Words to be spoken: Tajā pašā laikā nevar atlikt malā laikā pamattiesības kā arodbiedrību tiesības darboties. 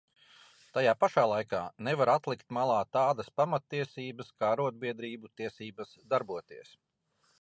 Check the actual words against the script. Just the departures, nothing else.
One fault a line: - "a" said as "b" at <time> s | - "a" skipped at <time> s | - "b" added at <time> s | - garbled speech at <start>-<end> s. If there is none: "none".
- "laikā" said as "tādas" at 3.0 s